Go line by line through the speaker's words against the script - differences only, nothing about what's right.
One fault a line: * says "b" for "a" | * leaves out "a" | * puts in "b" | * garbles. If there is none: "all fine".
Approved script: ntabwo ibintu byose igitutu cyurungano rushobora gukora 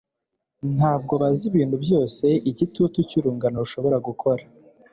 * puts in "bazi"